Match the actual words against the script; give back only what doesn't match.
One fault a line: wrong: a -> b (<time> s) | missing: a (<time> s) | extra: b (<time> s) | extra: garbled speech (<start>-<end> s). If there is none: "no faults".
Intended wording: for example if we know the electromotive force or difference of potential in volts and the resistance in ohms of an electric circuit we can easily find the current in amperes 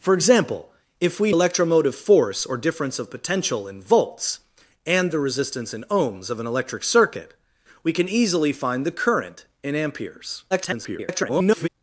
missing: know the (1.3 s)
extra: garbled speech (10.5-11.7 s)